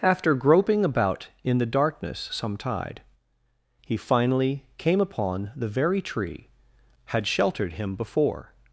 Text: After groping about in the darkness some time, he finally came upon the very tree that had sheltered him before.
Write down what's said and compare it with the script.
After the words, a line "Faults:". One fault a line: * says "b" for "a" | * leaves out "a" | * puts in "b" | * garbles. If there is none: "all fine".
After groping about in the darkness some tide, he finally came upon the very tree had sheltered him before.
Faults:
* says "tide" for "time"
* leaves out "that"